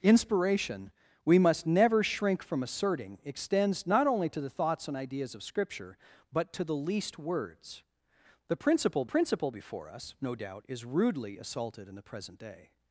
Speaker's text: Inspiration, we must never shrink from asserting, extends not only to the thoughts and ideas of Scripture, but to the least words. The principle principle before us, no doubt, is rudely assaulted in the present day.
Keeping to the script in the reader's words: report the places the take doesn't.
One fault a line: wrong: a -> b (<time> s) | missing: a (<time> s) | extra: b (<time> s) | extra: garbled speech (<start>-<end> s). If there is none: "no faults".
no faults